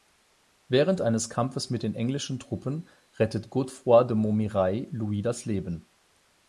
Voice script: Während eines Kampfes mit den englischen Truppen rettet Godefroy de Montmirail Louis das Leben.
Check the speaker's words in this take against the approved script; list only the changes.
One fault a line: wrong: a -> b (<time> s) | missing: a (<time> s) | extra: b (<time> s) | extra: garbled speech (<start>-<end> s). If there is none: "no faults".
no faults